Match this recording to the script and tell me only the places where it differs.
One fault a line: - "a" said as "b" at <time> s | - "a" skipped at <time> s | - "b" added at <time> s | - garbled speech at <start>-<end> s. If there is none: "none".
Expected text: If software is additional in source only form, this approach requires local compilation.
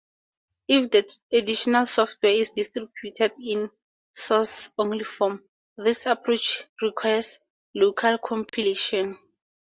- "the additional" added at 0.9 s
- "additional" said as "distributed" at 2.6 s